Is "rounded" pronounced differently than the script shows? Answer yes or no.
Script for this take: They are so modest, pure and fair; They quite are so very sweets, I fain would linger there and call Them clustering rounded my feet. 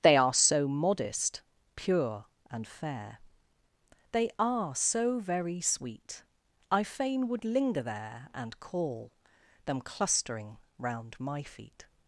yes